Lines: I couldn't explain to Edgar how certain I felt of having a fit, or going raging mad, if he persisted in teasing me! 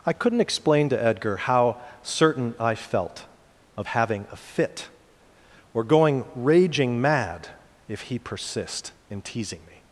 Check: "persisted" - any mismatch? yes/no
yes